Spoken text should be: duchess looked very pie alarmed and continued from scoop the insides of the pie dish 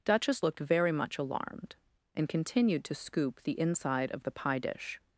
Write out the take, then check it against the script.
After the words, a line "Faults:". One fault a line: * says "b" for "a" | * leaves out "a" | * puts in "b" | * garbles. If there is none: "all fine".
duchess looked very much alarmed and continued to scoop the inside of the pie dish
Faults:
* says "much" for "pie"
* says "to" for "from"
* says "inside" for "insides"